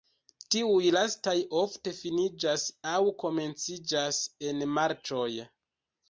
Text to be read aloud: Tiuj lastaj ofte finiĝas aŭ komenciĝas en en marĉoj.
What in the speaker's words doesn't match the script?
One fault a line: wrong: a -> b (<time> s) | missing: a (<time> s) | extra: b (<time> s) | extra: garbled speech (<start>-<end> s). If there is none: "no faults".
missing: en (4.6 s)